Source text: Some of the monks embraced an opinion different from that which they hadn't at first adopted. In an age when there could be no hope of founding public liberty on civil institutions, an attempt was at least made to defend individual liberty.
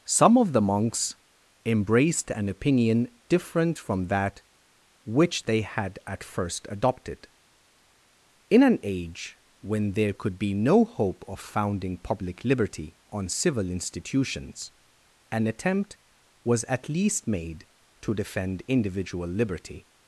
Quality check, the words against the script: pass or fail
fail